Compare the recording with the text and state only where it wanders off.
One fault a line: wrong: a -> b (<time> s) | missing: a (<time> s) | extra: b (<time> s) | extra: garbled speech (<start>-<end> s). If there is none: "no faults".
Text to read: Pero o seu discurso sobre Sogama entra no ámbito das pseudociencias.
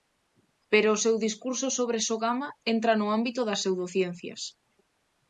no faults